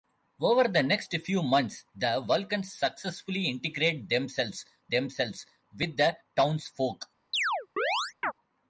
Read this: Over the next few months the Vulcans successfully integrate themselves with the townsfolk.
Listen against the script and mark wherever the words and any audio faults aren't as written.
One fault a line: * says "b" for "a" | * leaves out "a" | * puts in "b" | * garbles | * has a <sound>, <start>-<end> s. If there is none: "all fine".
* puts in "themselves"
* has a chirp, 7.3-8.3 s